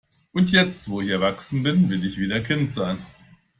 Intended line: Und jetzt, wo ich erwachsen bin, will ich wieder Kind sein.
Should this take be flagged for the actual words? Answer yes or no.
no